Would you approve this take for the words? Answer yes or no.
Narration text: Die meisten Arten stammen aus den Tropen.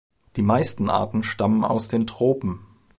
yes